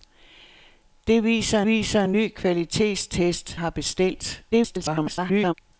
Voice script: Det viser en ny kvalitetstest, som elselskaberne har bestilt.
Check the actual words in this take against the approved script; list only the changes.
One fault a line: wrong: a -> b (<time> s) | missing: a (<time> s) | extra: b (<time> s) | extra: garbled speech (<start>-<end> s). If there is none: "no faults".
extra: viser (1.6 s)
missing: som elselskaberne (3.6 s)
extra: garbled speech (4.5-5.5 s)